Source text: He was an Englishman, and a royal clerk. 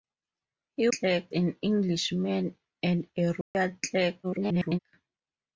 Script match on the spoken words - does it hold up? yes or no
no